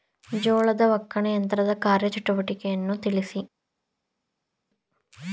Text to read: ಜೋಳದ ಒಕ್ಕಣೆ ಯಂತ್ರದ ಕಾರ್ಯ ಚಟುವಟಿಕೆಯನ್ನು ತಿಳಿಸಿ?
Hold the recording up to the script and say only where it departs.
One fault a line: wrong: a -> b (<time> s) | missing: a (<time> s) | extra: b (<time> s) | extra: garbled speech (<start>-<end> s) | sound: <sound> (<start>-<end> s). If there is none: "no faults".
no faults